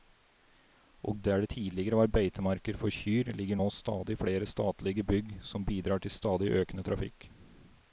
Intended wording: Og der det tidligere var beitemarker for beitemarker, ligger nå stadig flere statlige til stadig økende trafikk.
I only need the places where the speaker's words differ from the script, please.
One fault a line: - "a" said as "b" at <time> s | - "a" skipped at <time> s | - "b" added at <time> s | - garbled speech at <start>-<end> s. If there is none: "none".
- "beitemarker" said as "kyr" at 2.9 s
- "bygg som bidrar" added at 5.0 s